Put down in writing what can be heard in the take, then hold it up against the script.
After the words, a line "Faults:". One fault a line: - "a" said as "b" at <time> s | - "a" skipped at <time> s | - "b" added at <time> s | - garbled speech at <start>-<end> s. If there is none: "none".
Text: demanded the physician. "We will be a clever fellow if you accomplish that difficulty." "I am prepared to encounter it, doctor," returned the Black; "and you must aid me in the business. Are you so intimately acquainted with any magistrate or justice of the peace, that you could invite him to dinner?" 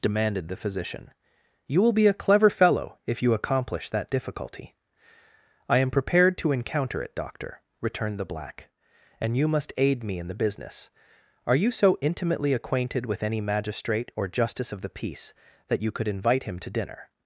demanded the physician. "You will be a clever fellow if you accomplish that difficulty." "I am prepared to encounter it, doctor," returned the Black; "and you must aid me in the business. Are you so intimately acquainted with any magistrate or justice of the peace, that you could invite him to dinner?"
Faults:
- "We" said as "You" at 1.7 s